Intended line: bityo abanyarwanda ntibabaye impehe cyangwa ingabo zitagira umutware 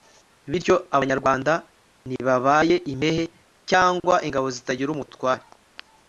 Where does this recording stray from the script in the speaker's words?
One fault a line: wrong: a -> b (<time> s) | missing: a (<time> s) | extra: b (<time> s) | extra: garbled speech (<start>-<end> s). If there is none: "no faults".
no faults